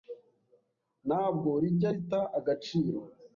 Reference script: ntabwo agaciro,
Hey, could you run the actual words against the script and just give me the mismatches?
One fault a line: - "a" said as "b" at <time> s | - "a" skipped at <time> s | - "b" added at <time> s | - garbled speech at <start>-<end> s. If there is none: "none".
- "rijya rita" added at 1.6 s